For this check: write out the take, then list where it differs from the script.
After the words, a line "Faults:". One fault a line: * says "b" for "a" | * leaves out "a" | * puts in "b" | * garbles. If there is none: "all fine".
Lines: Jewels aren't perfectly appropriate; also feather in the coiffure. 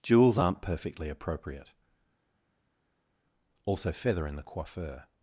Jewels aren't perfectly appropriate; also feather in the coiffure.
Faults:
all fine